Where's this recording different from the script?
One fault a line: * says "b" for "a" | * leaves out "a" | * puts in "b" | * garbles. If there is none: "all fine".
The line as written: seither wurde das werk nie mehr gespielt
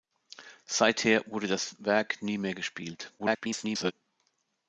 * garbles